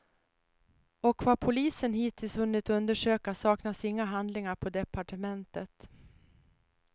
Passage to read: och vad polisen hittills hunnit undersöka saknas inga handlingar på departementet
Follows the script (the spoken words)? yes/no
yes